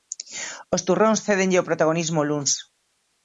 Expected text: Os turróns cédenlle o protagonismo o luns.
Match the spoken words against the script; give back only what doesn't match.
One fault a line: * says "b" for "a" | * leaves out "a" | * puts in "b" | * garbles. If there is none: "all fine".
all fine